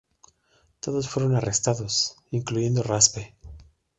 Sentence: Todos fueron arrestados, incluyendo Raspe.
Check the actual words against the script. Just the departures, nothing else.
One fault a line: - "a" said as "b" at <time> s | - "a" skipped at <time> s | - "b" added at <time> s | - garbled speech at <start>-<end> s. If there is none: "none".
none